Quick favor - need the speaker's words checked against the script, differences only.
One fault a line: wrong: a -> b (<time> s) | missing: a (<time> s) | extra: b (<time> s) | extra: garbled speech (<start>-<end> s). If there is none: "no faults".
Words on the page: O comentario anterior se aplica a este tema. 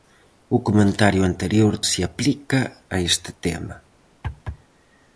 no faults